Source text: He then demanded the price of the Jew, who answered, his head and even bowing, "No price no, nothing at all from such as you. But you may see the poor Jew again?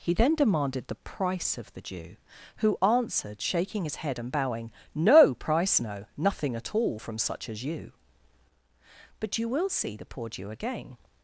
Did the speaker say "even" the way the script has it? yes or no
no